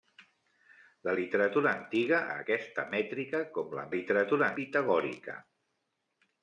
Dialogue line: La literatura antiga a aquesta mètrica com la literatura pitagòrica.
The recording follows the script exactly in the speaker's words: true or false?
true